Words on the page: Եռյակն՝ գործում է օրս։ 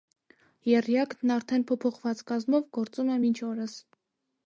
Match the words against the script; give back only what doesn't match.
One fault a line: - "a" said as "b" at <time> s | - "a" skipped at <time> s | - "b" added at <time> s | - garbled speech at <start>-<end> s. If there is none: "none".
- "արդեն փոփոխված կազմով" added at 1.4 s
- "մինչ" added at 3.3 s